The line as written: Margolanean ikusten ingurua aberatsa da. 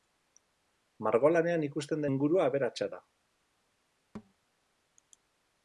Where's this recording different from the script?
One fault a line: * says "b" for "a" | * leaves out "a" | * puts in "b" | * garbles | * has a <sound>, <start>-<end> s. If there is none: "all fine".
* has a thud, 4.1-4.3 s